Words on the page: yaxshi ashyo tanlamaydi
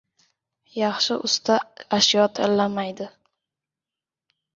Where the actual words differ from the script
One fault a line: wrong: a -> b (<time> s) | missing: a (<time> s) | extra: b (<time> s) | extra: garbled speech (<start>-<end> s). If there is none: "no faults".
extra: usta (1.3 s)